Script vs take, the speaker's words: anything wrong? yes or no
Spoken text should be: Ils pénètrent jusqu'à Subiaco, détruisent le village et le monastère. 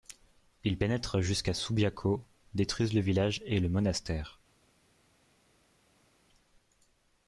no